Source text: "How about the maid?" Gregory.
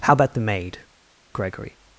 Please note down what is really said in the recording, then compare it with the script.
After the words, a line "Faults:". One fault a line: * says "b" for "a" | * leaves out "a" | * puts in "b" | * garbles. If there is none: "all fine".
"How about the maid?" Gregory.
Faults:
all fine